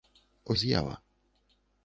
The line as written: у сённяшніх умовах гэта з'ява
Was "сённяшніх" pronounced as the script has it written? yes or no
no